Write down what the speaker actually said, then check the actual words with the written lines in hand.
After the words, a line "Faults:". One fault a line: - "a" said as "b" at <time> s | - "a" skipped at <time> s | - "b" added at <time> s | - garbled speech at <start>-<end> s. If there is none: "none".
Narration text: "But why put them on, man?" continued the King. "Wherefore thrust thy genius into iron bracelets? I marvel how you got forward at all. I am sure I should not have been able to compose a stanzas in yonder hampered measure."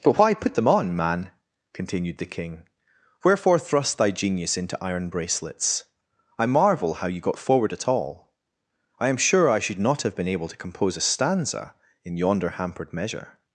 "But why put them on, man?" continued the King. "Wherefore thrust thy genius into iron bracelets? I marvel how you got forward at all. I am sure I should not have been able to compose a stanza in yonder hampered measure."
Faults:
- "stanzas" said as "stanza" at 11.0 s